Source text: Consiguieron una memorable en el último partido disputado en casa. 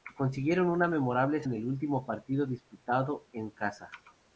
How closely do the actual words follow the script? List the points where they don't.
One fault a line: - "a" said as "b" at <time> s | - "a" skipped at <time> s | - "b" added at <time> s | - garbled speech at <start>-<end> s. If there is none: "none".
none